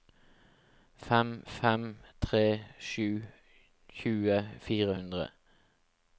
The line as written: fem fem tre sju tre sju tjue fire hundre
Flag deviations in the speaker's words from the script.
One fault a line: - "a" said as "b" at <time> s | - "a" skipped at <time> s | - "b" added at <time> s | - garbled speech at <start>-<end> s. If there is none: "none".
- "tre sju" skipped at 3.1 s